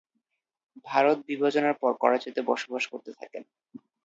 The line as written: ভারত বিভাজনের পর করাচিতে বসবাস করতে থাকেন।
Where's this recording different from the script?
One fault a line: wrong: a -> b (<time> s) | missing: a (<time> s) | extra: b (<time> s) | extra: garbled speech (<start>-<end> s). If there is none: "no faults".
no faults